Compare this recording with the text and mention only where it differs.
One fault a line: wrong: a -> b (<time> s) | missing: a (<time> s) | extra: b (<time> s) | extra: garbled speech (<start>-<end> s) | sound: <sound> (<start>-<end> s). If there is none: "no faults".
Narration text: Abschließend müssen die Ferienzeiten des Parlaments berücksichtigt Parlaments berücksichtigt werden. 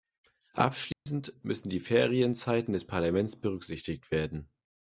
sound: dropout (0.9-1.1 s)
missing: Parlaments berücksichtigt (4.1 s)